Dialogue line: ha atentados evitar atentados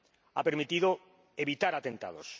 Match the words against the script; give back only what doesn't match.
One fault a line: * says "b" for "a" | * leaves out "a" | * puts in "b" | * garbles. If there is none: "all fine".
* says "permitido" for "atentados"